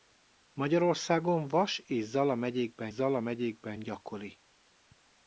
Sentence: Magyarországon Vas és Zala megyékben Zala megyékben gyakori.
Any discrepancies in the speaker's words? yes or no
no